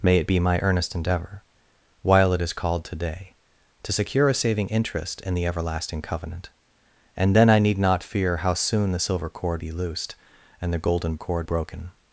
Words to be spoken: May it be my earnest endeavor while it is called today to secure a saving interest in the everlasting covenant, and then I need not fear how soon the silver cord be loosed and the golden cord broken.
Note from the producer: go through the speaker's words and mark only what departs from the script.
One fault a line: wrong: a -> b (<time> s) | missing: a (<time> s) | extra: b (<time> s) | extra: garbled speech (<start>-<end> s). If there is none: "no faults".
no faults